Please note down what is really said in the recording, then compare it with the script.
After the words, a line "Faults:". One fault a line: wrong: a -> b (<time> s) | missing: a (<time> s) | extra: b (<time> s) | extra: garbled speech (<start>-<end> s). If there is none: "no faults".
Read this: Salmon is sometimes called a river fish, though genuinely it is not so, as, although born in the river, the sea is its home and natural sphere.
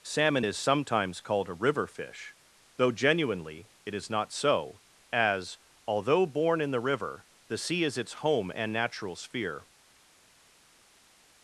Salmon is sometimes called a river fish, though genuinely it is not so, as, although born in the river, the sea is its home and natural sphere.
Faults:
no faults